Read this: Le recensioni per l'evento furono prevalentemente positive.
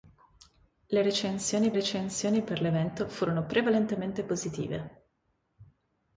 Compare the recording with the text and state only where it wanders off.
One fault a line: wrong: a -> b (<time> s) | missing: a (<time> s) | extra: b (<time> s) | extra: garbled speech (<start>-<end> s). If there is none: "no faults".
extra: recensioni (1.7 s)